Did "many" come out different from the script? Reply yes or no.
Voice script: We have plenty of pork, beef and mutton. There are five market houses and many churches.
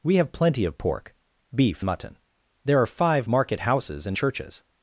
yes